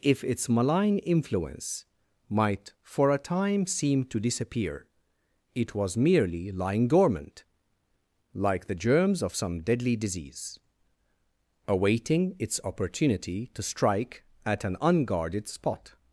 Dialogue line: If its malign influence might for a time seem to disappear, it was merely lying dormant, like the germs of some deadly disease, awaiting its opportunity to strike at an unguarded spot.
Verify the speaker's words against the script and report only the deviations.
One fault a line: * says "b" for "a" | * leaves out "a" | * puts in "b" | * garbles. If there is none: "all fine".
all fine